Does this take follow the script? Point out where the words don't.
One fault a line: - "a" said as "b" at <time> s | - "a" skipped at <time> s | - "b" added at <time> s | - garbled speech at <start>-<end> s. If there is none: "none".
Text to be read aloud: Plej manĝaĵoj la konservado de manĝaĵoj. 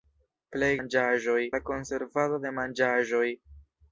none